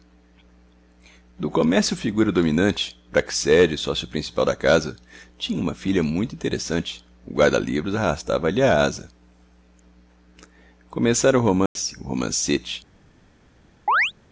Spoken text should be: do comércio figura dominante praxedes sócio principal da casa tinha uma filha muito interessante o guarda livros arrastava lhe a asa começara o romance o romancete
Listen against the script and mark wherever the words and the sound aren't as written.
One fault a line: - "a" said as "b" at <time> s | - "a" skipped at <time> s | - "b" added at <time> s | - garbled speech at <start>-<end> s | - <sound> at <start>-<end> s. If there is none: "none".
- dropout at 11.7-11.8 s
- chirp at 13.9-14.1 s